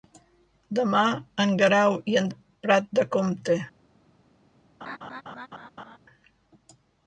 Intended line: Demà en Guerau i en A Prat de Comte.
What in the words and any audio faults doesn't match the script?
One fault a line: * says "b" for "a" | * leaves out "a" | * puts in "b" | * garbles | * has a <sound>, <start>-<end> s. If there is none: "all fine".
* has a laugh, 4.8-6.0 s